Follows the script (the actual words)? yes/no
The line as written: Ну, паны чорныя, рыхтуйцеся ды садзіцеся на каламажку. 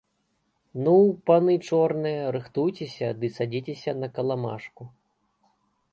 yes